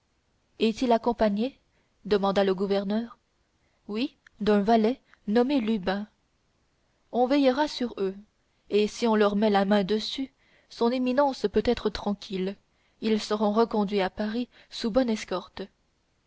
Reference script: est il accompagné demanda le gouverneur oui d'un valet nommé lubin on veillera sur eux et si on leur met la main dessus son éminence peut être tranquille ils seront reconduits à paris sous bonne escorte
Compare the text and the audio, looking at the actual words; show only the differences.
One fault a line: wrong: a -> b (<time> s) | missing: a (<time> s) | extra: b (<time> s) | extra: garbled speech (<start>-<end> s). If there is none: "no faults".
no faults